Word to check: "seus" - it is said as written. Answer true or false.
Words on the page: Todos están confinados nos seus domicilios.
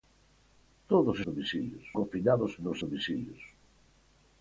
false